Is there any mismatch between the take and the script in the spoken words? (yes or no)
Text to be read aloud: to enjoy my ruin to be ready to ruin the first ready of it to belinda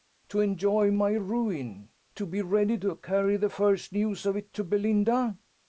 yes